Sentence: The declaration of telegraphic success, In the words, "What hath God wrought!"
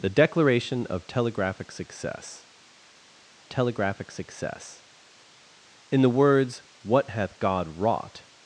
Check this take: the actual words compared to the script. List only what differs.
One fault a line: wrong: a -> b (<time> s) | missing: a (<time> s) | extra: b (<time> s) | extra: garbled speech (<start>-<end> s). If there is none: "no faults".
extra: telegraphic success (3.5 s)